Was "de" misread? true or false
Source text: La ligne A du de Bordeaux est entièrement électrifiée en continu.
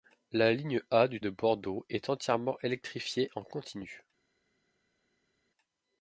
false